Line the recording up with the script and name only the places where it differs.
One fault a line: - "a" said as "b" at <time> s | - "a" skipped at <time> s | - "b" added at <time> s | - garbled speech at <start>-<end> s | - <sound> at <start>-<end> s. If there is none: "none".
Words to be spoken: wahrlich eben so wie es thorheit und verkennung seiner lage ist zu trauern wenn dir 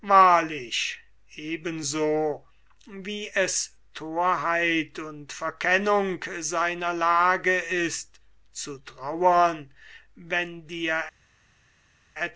none